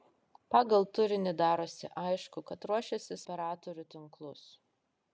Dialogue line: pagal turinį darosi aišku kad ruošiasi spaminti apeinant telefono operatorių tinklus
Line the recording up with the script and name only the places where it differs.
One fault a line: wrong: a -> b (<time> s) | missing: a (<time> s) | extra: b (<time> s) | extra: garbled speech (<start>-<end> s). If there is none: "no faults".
missing: spaminti apeinant telefono (3.2 s)